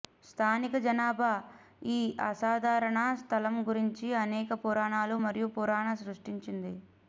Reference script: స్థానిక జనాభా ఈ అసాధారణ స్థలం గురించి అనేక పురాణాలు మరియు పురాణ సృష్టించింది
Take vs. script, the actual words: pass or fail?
pass